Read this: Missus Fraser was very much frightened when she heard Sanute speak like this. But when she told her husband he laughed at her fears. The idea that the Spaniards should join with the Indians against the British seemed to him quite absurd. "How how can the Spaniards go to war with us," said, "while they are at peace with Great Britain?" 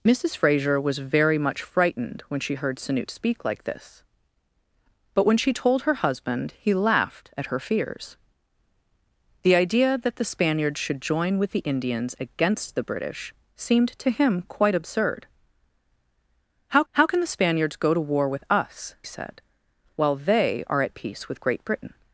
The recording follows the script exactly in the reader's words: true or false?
true